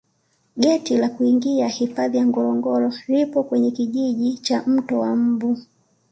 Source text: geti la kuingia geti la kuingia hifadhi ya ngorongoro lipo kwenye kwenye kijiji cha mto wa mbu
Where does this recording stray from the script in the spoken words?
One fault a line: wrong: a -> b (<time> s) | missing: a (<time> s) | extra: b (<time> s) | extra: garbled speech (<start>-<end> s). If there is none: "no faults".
missing: geti la kuingia (1.7 s)
missing: kwenye (3.7 s)